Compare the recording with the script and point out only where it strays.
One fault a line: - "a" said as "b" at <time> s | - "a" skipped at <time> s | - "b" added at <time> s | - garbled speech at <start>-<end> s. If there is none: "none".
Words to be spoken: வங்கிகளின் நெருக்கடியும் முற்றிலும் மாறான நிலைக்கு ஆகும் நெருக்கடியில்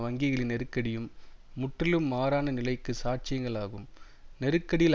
- "சாட்சியங்கள்" added at 3.0 s